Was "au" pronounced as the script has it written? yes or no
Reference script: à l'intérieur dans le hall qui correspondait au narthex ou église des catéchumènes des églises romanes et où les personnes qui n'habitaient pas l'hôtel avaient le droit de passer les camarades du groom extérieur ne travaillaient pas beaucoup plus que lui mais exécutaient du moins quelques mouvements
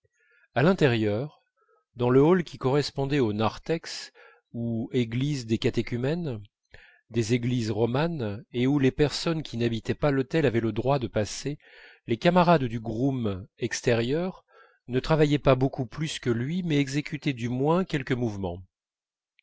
yes